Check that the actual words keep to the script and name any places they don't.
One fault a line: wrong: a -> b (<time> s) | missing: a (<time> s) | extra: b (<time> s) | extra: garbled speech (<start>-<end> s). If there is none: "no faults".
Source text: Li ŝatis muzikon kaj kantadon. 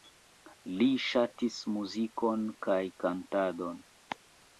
no faults